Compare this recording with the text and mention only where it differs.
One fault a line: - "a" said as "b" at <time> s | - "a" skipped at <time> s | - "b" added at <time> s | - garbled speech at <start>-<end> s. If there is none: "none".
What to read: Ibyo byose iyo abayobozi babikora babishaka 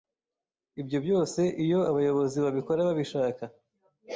none